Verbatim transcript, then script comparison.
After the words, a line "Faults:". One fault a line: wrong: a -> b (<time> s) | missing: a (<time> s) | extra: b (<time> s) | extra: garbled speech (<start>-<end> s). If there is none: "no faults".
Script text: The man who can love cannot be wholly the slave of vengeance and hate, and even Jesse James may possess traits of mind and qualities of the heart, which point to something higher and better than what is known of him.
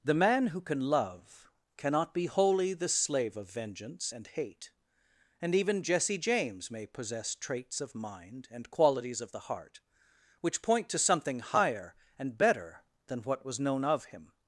The man who can love cannot be wholly the slave of vengeance and hate, and even Jesse James may possess traits of mind and qualities of the heart, which point to something higher and better than what was known of him.
Faults:
wrong: is -> was (13.4 s)